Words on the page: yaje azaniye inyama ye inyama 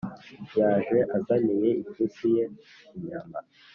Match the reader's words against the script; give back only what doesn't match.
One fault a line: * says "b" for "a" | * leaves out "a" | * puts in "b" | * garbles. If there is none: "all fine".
* says "ipusi" for "inyama"